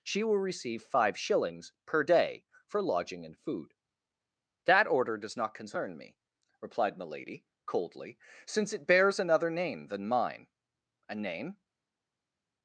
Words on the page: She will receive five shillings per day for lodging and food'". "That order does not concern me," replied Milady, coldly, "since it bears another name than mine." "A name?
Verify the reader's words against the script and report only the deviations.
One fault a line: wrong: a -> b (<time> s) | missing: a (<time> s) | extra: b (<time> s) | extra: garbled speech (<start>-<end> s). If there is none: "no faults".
no faults